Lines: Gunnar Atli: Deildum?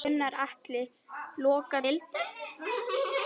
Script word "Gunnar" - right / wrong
right